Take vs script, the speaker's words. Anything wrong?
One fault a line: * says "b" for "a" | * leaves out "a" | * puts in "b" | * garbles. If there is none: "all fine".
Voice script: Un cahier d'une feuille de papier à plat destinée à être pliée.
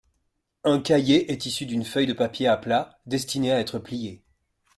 * puts in "est issu"